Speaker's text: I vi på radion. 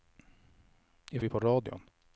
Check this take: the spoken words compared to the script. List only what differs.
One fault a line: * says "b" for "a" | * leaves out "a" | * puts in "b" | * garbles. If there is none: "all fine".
all fine